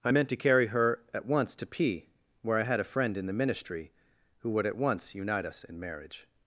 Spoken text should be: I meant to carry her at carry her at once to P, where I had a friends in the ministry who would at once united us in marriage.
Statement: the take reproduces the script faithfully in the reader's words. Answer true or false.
false